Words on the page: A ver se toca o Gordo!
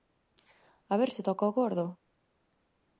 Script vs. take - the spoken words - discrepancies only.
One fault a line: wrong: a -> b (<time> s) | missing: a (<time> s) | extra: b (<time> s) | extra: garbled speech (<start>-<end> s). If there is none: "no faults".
no faults